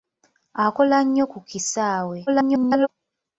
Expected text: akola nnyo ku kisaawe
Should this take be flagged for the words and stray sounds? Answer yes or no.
yes